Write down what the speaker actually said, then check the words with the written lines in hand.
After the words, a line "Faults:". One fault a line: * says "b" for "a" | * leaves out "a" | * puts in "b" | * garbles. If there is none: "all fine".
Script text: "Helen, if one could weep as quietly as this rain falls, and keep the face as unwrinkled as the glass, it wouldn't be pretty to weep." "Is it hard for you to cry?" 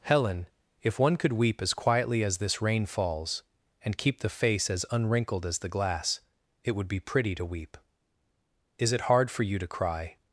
"Helen, if one could weep as quietly as this rain falls, and keep the face as unwrinkled as the glass, it would be pretty to weep." "Is it hard for you to cry?"
Faults:
* says "would" for "wouldn't"